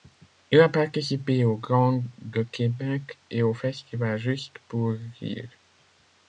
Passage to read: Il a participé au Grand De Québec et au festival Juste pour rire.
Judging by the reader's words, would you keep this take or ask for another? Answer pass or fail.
pass